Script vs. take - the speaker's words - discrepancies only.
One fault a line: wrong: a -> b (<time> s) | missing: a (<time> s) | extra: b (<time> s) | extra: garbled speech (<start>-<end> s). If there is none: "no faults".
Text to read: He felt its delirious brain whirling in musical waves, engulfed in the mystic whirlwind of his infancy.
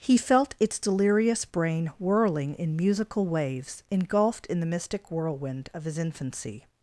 no faults